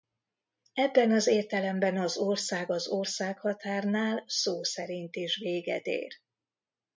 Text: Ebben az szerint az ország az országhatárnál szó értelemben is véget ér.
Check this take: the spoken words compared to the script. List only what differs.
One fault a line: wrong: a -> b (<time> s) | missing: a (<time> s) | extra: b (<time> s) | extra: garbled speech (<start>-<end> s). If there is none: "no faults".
wrong: szerint -> értelemben (1.3 s)
wrong: értelemben -> szerint (4.6 s)